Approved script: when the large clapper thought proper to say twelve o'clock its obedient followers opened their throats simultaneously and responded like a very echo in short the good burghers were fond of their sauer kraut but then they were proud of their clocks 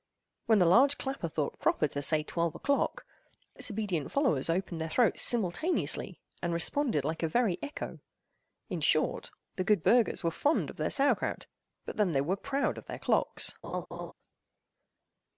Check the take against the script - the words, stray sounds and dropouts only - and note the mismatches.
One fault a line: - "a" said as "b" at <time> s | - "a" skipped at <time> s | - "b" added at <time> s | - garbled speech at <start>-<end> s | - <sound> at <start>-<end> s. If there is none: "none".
- laugh at 13.6-14.1 s